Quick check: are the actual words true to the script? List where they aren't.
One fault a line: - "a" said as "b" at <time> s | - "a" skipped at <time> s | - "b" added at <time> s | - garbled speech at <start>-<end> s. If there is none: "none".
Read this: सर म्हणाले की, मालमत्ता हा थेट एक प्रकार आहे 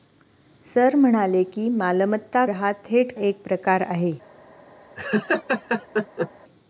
none